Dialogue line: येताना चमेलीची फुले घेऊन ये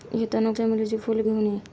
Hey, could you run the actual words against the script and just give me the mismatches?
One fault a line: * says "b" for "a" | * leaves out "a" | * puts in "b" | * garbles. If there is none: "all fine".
all fine